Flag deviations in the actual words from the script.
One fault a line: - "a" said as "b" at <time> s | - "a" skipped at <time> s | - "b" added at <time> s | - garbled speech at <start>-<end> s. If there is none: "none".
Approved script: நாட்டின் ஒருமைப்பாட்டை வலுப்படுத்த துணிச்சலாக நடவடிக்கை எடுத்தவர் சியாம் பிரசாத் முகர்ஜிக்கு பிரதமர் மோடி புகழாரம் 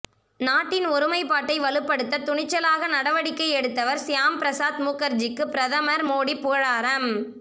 none